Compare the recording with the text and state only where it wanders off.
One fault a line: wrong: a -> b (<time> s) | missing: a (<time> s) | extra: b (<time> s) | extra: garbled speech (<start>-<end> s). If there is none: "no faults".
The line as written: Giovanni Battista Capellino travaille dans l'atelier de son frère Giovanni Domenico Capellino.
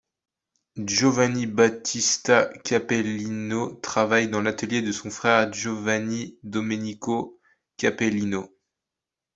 no faults